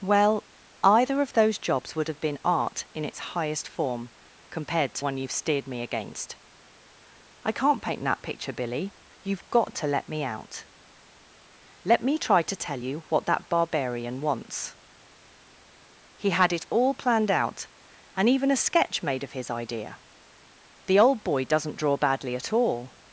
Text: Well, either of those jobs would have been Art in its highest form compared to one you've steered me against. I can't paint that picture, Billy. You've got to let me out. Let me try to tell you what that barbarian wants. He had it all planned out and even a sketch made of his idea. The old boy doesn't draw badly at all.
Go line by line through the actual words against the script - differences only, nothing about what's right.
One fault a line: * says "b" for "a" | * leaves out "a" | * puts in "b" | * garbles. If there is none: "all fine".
all fine